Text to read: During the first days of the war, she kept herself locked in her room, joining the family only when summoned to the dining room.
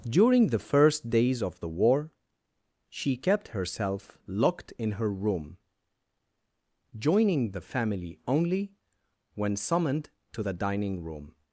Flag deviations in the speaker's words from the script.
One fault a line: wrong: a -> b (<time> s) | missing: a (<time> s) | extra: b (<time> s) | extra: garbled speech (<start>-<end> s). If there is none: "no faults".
no faults